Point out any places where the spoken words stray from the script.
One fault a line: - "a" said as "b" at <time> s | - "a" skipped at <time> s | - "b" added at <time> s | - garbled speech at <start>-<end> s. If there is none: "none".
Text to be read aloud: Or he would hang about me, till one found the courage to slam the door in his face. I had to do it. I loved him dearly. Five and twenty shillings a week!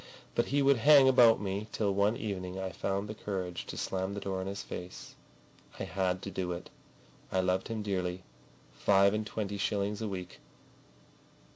- "Or" said as "But" at 0.3 s
- "evening I" added at 2.2 s